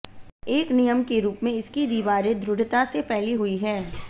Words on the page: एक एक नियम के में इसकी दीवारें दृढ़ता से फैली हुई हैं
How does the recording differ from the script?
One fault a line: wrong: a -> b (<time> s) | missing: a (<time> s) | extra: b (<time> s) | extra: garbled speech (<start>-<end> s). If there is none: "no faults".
missing: एक (0.7 s)
extra: रूप (1.2 s)